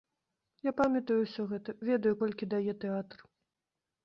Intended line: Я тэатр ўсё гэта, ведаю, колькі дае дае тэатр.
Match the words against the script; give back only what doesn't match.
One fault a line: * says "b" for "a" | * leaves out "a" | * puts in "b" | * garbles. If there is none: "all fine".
* says "памятаю" for "тэатр"
* leaves out "дае"